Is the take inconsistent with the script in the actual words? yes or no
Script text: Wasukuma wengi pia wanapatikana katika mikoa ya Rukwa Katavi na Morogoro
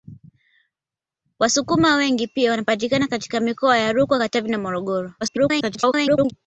yes